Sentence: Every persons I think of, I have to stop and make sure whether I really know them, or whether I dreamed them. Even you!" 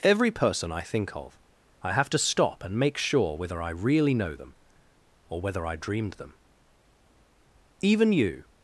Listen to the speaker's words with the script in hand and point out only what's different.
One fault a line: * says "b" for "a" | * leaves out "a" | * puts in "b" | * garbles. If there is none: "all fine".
* says "person" for "persons"